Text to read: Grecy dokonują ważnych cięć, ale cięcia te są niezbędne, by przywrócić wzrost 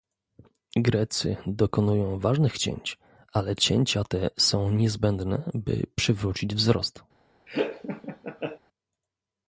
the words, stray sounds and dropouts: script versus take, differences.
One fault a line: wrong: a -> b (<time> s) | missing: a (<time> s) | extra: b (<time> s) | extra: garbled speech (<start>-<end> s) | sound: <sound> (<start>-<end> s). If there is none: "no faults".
sound: laugh (7.5-8.6 s)